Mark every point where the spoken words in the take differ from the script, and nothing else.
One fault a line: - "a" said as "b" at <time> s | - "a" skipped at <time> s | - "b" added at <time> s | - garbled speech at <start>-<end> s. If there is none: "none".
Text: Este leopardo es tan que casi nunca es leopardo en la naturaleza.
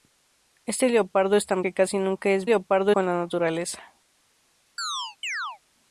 none